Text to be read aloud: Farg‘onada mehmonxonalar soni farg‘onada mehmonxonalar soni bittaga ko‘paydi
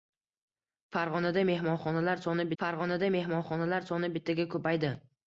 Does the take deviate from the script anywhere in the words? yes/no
no